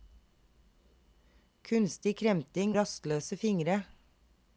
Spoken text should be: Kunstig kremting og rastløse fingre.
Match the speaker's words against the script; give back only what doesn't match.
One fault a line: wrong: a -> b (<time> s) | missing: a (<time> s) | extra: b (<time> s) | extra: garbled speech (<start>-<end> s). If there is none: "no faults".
missing: og (2.7 s)